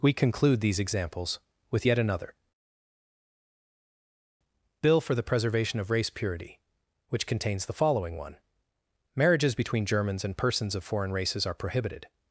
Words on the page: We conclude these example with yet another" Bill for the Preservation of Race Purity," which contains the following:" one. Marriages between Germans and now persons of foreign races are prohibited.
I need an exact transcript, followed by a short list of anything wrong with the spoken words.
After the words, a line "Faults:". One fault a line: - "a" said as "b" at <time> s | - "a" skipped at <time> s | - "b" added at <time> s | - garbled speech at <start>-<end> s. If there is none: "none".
We conclude these examples with yet another" Bill for the Preservation of Race Purity," which contains the following:" one. Marriages between Germans and persons of foreign races are prohibited.
Faults:
- "example" said as "examples" at 0.8 s
- "now" skipped at 10.4 s